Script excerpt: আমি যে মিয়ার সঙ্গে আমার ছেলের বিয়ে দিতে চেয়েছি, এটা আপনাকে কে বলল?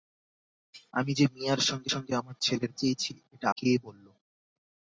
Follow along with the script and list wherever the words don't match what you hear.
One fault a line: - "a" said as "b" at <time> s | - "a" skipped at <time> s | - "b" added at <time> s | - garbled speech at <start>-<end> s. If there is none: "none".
- "সঙ্গে" added at 1.9 s
- "বিয়ে দিতে" skipped at 2.7 s
- "আপনাকে" skipped at 3.5 s